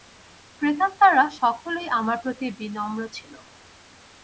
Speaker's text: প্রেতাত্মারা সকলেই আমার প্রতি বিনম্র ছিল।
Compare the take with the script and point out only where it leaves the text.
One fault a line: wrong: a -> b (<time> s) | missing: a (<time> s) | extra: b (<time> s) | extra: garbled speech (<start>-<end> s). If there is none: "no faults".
no faults